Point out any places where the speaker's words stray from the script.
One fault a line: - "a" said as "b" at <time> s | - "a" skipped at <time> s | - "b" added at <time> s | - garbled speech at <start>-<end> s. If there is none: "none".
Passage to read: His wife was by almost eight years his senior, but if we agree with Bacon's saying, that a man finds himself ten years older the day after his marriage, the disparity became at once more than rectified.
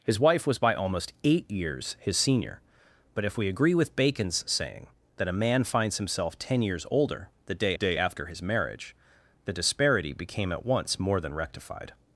- "day" added at 7.7 s